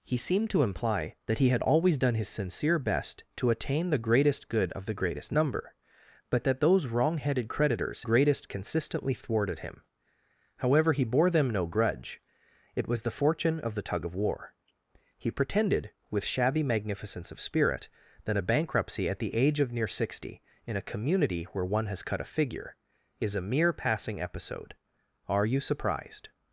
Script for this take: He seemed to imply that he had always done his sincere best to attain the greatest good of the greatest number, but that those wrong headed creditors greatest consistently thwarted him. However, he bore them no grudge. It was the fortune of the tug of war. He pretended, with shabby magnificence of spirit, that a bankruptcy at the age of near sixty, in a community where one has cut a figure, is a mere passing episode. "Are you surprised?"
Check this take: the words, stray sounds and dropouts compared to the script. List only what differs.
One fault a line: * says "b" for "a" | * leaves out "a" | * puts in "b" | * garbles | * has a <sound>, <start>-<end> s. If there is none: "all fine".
all fine